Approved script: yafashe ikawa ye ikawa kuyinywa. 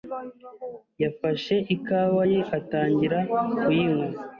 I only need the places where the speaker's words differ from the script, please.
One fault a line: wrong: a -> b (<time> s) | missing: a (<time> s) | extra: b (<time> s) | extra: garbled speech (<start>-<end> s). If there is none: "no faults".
wrong: ikawa -> atangira (2.6 s)